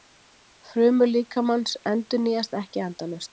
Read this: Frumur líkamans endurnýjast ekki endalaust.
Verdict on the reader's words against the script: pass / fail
pass